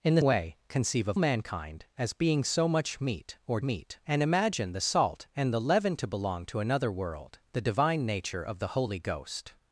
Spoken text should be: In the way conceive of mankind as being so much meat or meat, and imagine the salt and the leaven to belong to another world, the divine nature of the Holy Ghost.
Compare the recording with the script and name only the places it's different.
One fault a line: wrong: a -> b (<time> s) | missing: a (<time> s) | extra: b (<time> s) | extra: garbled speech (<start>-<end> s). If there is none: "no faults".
no faults